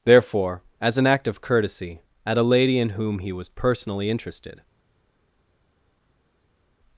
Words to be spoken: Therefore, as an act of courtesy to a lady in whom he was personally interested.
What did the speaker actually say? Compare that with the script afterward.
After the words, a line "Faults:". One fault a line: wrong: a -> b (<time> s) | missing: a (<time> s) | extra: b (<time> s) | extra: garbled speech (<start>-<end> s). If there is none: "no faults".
Therefore, as an act of courtesy at a lady in whom he was personally interested.
Faults:
wrong: to -> at (2.2 s)